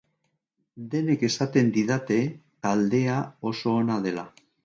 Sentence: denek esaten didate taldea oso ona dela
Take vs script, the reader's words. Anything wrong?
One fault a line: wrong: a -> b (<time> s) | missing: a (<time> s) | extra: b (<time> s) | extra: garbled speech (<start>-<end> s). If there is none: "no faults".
no faults